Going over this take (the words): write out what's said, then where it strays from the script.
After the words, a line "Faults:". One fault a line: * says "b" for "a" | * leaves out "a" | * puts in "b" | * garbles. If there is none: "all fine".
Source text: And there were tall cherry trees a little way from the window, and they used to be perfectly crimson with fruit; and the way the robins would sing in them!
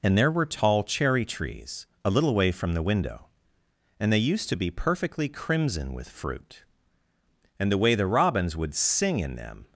And there were tall cherry trees a little way from the window, and they used to be perfectly crimson with fruit; and the way the robins would sing in them!
Faults:
all fine